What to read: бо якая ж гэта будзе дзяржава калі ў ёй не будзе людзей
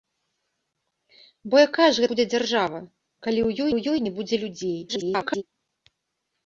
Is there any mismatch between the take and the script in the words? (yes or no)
yes